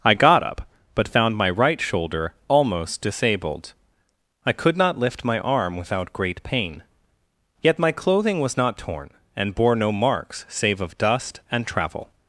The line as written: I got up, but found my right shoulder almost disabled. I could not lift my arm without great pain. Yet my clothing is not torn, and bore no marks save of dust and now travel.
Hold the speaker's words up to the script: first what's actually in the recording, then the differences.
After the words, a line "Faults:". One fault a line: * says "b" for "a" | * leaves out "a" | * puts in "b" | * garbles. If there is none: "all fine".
I got up, but found my right shoulder almost disabled. I could not lift my arm without great pain. Yet my clothing was not torn, and bore no marks save of dust and travel.
Faults:
* says "was" for "is"
* leaves out "now"